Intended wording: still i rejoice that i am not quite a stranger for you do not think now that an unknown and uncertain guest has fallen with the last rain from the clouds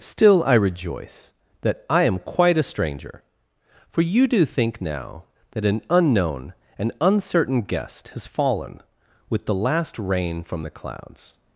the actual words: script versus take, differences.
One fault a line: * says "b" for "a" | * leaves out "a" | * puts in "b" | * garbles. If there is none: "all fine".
* leaves out "not"
* leaves out "not"